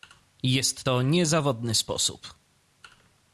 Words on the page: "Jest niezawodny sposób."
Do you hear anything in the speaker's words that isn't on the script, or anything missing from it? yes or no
yes